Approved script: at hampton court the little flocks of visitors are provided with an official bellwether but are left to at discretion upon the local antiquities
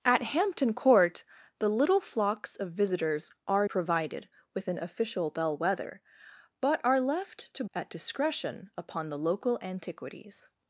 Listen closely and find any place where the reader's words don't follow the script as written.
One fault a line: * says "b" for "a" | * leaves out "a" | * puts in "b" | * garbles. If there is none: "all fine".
all fine